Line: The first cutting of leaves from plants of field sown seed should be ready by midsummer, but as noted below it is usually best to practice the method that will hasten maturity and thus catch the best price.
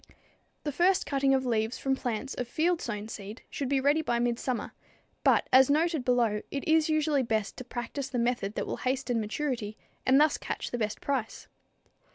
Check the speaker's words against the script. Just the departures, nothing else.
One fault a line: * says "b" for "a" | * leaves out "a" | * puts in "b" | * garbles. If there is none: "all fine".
all fine